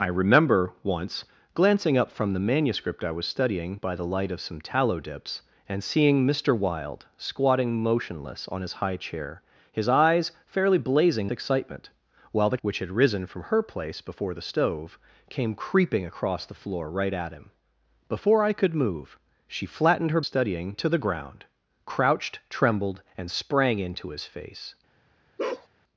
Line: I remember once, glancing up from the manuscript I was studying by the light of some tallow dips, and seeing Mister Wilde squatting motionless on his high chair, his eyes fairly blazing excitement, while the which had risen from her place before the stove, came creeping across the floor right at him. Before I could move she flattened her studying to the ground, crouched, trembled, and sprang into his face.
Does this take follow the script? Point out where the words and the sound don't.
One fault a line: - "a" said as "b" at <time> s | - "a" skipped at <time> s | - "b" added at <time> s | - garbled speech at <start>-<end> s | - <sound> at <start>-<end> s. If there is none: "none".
- bark at 25.4-25.7 s